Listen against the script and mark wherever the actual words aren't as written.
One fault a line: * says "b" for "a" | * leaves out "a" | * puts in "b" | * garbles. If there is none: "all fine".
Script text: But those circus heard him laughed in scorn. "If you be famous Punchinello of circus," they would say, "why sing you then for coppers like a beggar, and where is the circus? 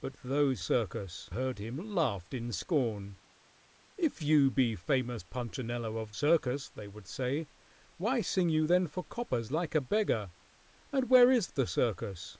all fine